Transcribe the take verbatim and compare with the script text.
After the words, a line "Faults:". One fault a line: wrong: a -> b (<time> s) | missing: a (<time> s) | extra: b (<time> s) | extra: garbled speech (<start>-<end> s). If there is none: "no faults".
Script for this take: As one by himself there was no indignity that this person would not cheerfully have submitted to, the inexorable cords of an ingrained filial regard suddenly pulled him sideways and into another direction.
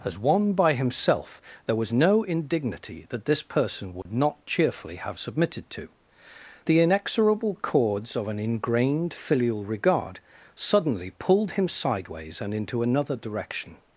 As one by himself there was no indignity that this person would not cheerfully have submitted to, the inexorable cords of an ingrained filial regard suddenly pulled him sideways and into another direction.
Faults:
no faults